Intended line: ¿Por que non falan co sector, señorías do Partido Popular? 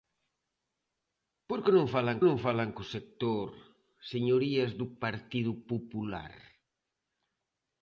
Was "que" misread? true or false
false